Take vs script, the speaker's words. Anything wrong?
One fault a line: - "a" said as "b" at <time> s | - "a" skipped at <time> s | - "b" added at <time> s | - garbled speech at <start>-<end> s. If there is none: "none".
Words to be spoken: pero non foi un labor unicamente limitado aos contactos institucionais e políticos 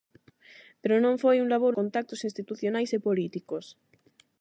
- "unicamente limitado aos" skipped at 1.7 s